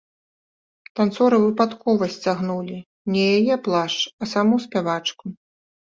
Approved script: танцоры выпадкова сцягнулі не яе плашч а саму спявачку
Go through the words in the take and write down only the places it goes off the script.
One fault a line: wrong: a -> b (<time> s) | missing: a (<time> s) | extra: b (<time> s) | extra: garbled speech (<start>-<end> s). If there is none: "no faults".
no faults